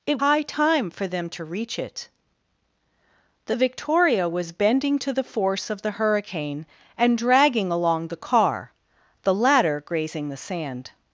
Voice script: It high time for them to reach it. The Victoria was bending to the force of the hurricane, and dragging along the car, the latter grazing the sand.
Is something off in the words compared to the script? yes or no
no